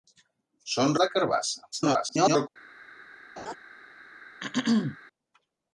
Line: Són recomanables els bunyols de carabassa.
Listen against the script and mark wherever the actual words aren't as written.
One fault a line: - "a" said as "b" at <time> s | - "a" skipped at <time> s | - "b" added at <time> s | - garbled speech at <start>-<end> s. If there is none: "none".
- "recomanables els bunyols" skipped at 0.9 s
- garbled speech at 1.7-2.5 s